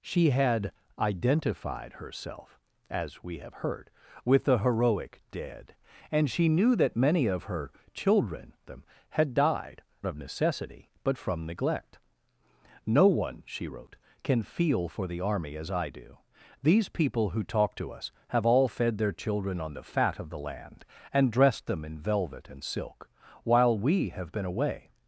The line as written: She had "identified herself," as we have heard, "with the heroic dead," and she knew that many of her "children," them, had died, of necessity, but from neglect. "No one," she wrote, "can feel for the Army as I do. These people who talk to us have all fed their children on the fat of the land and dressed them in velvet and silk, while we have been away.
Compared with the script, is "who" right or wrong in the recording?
right